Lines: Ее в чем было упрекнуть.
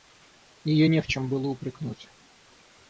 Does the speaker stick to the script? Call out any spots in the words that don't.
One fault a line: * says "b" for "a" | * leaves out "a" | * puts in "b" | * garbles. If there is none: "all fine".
* puts in "не"